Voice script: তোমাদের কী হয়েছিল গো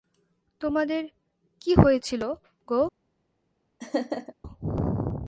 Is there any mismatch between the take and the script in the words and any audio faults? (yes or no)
yes